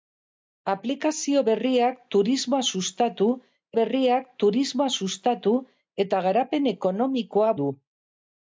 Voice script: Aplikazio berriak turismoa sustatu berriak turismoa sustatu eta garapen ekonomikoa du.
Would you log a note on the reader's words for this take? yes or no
no